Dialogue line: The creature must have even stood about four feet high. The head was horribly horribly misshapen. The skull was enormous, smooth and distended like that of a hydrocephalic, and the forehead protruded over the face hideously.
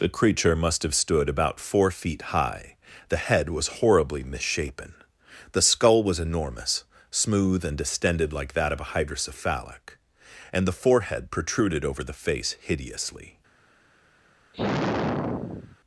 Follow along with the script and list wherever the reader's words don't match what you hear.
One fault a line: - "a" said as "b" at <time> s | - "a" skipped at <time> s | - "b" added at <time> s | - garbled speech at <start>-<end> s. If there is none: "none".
- "even" skipped at 0.9 s
- "horribly" skipped at 4.2 s